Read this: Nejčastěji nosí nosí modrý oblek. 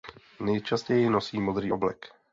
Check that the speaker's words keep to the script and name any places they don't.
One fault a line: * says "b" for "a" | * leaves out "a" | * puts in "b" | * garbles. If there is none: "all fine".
* leaves out "nosí"